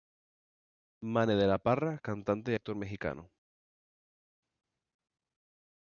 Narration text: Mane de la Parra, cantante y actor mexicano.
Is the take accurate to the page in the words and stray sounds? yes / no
yes